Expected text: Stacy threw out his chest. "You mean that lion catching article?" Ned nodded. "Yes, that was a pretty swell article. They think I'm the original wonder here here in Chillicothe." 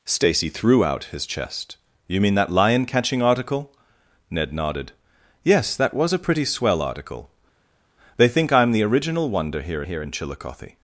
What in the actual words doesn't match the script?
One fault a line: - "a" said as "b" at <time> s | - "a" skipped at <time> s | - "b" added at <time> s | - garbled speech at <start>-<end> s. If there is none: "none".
none